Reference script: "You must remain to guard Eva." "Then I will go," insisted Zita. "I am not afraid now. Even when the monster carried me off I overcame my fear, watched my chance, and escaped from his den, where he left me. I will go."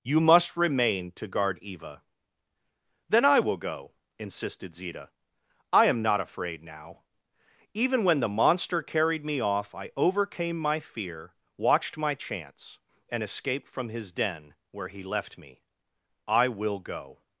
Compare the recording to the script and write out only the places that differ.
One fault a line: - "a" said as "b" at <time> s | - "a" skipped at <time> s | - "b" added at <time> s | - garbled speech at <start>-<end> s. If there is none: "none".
none